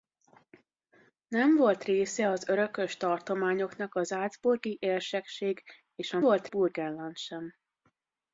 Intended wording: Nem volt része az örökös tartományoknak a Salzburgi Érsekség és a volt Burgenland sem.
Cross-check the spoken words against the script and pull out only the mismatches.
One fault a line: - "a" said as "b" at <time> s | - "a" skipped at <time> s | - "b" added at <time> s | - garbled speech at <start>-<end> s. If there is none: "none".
none